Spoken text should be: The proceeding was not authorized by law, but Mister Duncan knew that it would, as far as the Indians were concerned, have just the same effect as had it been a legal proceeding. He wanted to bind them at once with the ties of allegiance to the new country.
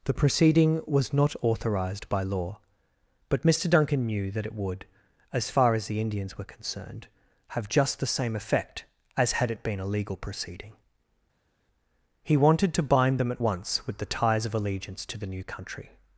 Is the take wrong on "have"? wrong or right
right